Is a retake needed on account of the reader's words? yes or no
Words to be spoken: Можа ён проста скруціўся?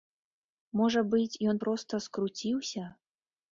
yes